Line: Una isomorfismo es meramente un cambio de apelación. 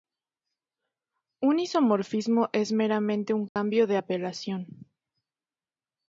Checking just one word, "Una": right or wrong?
wrong